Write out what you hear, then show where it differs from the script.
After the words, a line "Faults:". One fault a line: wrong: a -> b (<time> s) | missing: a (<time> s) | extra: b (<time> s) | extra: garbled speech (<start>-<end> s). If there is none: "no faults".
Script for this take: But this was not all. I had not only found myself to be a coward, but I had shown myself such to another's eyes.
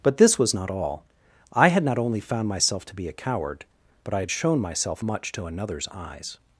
But this was not all. I had not only found myself to be a coward, but I had shown myself much to another's eyes.
Faults:
wrong: such -> much (5.0 s)